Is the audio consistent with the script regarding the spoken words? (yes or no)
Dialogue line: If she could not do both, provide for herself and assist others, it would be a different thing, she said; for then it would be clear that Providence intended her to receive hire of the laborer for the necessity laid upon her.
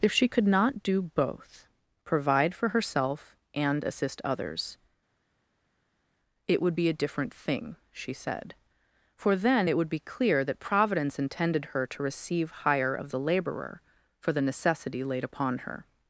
yes